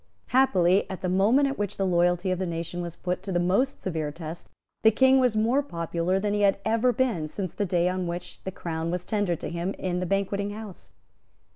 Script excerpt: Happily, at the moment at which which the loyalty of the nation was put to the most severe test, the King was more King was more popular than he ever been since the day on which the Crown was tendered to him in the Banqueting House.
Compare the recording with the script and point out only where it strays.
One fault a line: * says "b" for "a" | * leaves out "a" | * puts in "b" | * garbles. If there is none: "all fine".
* leaves out "which"
* leaves out "King was more"
* puts in "had"